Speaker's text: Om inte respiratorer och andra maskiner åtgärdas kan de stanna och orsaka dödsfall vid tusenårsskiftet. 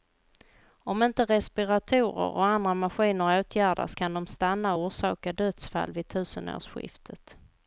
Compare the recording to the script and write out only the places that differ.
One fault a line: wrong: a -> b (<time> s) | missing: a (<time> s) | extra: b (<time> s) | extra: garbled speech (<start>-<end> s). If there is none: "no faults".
no faults